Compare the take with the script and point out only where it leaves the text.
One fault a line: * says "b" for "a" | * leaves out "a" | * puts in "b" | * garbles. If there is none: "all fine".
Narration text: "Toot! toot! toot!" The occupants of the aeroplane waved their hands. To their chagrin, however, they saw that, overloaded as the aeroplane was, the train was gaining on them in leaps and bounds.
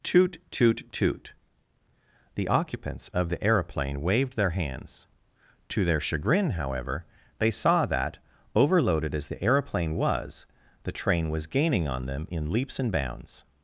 all fine